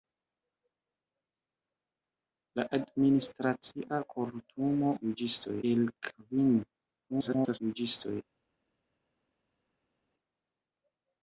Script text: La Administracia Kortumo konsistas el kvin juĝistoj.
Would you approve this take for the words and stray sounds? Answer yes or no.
no